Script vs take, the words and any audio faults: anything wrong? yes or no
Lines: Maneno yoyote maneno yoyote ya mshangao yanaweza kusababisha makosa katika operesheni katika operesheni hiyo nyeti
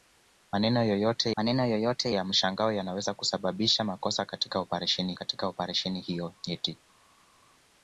no